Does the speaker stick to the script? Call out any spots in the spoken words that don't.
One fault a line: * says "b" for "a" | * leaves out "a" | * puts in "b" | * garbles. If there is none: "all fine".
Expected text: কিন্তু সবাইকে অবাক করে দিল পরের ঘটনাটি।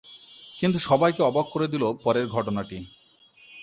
all fine